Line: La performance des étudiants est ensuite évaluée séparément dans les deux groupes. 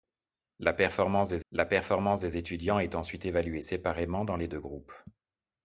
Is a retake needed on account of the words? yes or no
yes